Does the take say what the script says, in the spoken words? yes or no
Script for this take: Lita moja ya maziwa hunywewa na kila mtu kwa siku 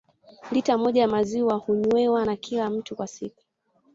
yes